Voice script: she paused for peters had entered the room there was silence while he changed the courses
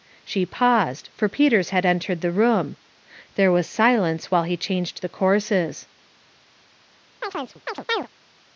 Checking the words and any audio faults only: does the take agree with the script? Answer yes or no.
no